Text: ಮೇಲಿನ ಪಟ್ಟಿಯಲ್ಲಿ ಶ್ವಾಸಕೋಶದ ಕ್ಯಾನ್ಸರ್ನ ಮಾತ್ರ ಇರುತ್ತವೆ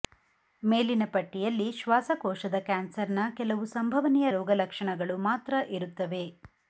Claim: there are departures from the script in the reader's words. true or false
true